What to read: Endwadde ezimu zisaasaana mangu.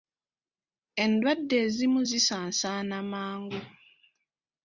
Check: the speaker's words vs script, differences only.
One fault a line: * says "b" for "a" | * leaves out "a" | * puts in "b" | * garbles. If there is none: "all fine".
all fine